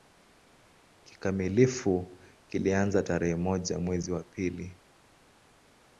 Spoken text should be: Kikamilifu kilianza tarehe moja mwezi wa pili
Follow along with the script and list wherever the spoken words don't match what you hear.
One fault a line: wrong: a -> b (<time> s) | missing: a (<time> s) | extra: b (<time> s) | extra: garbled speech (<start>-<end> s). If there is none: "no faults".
no faults